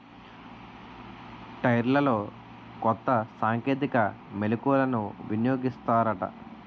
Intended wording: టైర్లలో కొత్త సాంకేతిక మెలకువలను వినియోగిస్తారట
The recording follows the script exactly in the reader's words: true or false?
true